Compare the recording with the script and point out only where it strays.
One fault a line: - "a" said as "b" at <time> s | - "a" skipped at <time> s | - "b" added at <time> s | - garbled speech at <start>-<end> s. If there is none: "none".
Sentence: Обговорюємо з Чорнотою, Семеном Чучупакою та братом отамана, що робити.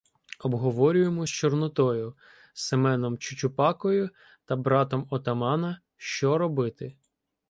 none